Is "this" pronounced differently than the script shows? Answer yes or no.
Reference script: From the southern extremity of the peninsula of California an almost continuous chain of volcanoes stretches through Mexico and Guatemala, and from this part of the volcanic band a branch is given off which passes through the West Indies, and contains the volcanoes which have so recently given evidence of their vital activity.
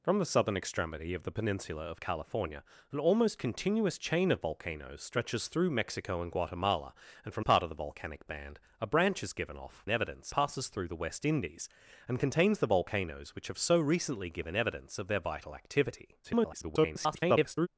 yes